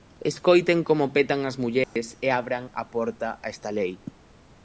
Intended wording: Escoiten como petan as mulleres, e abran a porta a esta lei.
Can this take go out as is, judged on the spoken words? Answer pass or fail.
pass